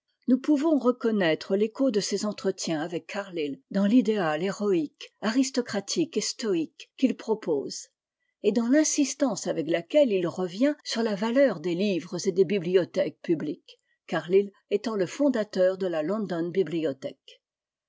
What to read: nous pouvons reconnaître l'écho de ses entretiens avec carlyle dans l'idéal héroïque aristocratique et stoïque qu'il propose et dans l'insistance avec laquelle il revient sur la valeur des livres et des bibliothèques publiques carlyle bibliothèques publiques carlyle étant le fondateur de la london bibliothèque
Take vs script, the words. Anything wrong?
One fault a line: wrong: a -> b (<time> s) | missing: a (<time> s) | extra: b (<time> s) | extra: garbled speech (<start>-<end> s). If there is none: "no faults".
missing: bibliothèques publiques carlyle (14.5 s)